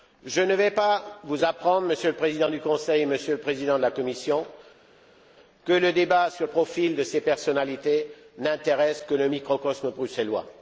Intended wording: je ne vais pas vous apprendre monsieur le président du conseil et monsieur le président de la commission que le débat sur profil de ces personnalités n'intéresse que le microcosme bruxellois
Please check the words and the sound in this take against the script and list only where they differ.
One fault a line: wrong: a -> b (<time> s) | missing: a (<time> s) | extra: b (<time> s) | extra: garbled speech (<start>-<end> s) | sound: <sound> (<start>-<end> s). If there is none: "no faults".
no faults